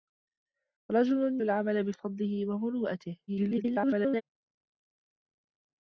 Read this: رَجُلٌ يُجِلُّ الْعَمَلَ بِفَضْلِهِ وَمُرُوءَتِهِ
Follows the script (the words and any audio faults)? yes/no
no